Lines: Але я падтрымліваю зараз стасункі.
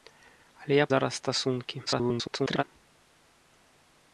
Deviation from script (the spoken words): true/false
true